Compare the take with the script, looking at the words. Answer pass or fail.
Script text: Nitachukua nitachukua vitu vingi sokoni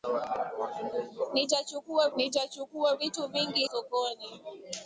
pass